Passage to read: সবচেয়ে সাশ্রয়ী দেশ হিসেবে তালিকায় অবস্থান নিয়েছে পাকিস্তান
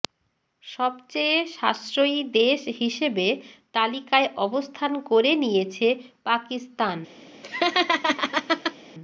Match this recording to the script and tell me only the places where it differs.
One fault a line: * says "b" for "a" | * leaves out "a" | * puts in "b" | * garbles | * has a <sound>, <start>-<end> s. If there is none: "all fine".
* puts in "করে"
* has a laugh, 7.4-8.8 s